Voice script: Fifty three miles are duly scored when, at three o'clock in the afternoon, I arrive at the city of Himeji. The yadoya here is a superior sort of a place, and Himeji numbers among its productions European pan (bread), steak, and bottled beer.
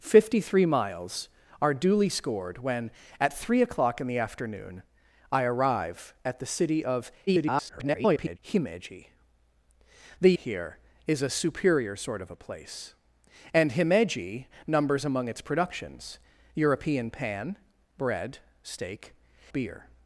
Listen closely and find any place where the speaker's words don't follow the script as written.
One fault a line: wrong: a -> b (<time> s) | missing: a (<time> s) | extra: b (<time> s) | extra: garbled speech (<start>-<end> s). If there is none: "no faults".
extra: garbled speech (7.3-8.4 s)
missing: yadoya (10.4 s)
missing: and bottled (19.1 s)